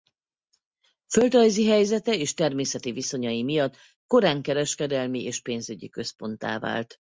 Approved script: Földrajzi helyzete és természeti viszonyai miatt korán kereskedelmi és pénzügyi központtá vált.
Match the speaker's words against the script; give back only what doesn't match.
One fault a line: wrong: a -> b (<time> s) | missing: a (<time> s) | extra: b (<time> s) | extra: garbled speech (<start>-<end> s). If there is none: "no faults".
no faults